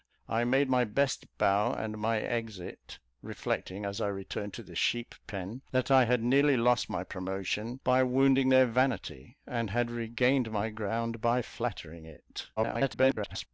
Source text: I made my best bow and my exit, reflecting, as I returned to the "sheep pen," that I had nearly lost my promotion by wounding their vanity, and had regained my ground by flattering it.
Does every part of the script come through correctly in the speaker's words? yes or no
no